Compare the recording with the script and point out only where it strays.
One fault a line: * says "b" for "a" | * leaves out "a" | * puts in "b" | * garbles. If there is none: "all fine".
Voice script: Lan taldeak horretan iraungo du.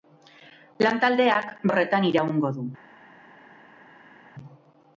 all fine